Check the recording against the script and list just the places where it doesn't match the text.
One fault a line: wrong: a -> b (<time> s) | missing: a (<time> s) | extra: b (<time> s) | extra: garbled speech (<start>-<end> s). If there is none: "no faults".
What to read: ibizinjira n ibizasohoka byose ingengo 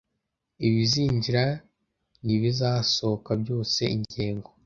no faults